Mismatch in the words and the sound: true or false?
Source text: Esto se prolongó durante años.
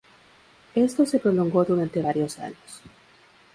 true